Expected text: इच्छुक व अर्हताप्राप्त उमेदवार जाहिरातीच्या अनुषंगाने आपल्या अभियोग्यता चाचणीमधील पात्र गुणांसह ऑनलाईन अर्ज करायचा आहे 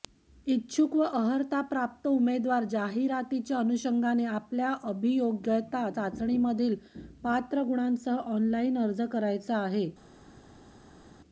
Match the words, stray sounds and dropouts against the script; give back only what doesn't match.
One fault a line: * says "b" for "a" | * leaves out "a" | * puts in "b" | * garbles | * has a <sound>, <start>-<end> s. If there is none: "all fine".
all fine